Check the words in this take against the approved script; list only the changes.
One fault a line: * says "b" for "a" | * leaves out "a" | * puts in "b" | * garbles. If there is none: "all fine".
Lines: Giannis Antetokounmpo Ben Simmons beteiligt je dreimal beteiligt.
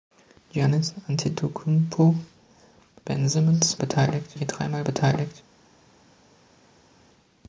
all fine